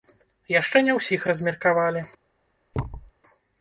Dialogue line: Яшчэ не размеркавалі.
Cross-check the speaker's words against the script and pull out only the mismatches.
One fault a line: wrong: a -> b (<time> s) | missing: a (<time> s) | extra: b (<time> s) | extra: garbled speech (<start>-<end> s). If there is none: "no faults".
extra: ўсіх (1.0 s)